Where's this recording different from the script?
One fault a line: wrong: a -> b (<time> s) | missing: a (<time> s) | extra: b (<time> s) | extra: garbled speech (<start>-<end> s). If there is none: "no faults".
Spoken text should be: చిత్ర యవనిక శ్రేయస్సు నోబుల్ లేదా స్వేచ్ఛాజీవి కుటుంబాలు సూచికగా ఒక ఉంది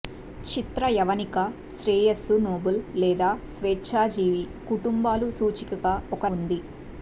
no faults